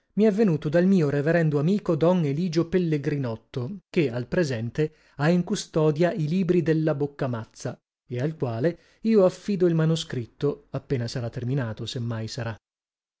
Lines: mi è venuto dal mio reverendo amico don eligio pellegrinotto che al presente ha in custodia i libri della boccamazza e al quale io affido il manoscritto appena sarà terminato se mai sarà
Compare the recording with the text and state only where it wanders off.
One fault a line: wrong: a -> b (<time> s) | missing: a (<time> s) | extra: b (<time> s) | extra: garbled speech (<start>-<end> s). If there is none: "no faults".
no faults